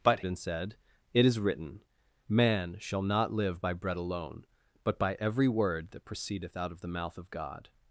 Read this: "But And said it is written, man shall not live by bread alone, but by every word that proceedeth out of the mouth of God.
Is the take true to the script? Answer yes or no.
yes